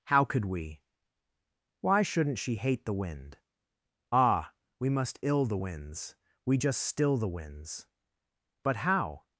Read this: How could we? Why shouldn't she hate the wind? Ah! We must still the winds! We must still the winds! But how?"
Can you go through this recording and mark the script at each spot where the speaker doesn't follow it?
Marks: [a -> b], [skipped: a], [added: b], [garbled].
How could we? Why shouldn't she hate the wind? Ah! We must [still -> ill] the winds! We [must -> just] still the winds! But how?"